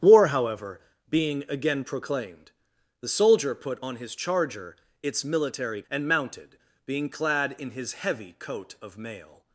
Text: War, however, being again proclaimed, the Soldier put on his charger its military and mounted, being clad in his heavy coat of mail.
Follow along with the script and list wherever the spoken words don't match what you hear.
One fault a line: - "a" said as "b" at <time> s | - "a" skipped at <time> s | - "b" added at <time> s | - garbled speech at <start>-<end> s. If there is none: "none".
none